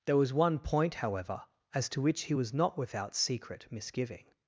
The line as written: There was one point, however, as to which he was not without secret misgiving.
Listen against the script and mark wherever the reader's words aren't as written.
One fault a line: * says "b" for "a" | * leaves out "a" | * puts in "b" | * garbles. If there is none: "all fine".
all fine